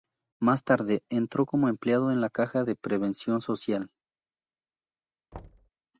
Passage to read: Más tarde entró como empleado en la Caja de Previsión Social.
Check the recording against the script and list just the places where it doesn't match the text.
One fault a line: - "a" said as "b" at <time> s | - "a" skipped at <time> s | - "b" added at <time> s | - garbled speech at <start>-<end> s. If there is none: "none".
none